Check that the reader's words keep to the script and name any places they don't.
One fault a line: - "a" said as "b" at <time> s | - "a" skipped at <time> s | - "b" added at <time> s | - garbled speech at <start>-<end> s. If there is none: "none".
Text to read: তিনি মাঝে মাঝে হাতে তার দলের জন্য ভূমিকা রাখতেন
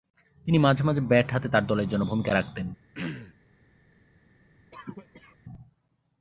- "ব্যাট" added at 1.0 s